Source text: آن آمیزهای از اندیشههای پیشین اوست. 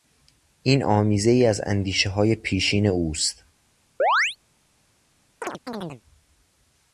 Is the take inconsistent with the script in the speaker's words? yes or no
yes